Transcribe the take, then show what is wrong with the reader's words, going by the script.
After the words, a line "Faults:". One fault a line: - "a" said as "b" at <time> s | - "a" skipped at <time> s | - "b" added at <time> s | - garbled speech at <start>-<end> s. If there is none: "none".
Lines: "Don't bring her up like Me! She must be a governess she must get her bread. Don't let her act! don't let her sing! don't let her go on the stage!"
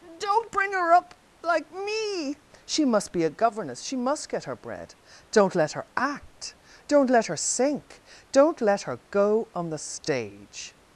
"Don't bring her up like Me! She must be a governess she must get her bread. Don't let her act! don't let her sink! don't let her go on the stage!"
Faults:
- "sing" said as "sink" at 7.4 s